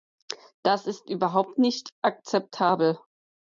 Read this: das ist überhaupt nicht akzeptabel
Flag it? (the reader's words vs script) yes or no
no